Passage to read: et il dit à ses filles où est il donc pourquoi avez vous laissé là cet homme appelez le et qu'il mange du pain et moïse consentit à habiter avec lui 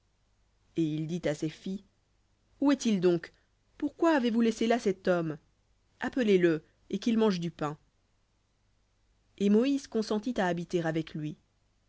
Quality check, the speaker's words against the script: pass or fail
pass